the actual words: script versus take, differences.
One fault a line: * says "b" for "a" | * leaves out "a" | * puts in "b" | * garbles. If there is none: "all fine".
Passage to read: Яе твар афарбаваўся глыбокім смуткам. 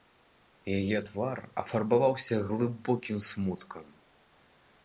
all fine